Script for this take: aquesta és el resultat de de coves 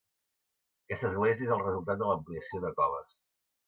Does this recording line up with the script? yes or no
no